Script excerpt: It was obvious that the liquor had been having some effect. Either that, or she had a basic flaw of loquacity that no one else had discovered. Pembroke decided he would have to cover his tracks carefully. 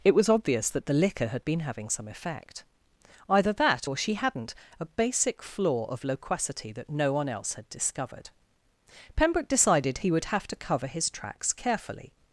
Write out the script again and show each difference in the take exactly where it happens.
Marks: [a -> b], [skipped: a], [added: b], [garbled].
It was obvious that the liquor had been having some effect. Either that, or she [had -> hadn't] a basic flaw of loquacity that no one else had discovered. Pembroke decided he would have to cover his tracks carefully.